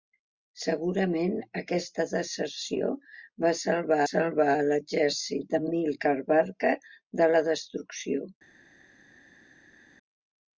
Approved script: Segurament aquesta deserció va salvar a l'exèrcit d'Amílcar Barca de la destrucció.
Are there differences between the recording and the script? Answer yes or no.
yes